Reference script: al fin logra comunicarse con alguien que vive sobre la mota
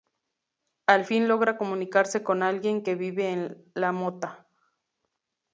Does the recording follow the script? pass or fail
fail